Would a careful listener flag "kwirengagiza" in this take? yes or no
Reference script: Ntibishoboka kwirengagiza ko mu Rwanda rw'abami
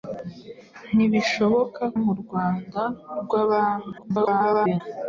yes